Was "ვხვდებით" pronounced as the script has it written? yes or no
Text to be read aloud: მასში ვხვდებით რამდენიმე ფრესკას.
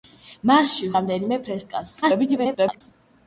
no